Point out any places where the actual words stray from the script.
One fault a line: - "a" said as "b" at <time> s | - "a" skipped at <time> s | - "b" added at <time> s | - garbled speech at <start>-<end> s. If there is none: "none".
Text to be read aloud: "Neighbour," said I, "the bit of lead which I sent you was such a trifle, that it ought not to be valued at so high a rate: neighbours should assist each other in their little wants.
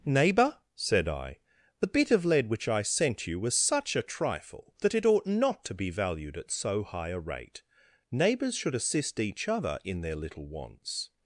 none